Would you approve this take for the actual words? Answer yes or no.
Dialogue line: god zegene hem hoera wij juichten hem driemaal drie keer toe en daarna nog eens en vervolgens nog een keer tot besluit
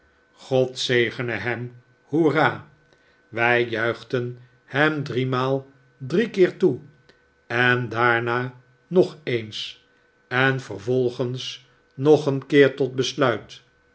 yes